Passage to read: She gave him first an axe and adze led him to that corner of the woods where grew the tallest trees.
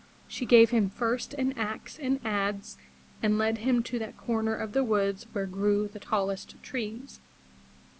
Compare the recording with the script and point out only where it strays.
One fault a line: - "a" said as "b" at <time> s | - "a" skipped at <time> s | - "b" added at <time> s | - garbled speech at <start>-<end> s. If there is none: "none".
- "and" added at 3.2 s